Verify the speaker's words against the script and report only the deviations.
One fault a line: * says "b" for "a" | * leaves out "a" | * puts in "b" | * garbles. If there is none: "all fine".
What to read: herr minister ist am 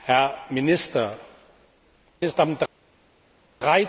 all fine